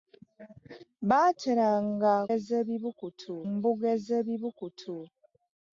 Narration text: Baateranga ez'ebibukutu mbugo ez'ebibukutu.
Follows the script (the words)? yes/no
yes